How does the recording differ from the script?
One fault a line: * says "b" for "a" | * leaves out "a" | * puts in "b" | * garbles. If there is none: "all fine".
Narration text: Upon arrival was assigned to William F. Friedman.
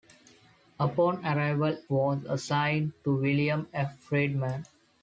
all fine